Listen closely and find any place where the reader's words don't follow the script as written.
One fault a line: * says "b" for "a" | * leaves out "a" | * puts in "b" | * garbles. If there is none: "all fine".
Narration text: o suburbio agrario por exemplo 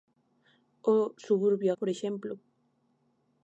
* leaves out "agrario"